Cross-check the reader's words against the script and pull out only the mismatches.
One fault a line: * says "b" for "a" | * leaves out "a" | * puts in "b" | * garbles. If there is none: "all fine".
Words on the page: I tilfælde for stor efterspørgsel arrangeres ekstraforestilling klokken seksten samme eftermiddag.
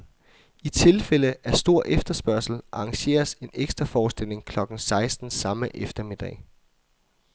* says "af" for "for"
* puts in "en"